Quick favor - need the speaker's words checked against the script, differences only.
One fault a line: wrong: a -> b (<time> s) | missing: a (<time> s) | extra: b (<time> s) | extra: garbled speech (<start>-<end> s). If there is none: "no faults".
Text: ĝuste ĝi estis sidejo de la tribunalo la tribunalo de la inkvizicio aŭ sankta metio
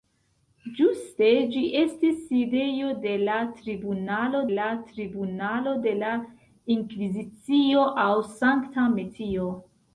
no faults